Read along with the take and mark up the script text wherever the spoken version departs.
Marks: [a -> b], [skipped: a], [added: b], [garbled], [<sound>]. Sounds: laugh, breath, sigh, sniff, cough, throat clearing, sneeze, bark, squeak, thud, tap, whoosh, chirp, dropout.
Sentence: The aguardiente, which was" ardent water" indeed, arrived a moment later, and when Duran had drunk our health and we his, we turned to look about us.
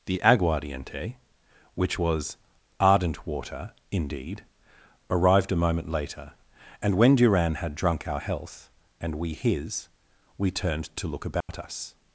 The aguardiente, which was" ardent water" indeed, arrived a moment later, and when Duran had drunk our health and we his, we turned to look about [dropout] us.